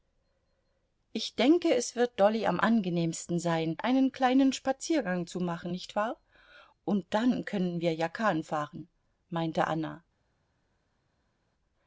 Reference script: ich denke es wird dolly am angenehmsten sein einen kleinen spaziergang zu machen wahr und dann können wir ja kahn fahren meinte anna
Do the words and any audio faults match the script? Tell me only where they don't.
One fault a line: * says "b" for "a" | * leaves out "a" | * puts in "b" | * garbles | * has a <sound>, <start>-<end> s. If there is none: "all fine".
* puts in "nicht"